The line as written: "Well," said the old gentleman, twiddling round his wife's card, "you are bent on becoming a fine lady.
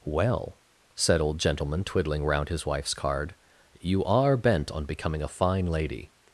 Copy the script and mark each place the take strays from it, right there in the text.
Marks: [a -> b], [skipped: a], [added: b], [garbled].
"Well," said [skipped: the] old gentleman, twiddling round his wife's card, "you are bent on becoming a fine lady.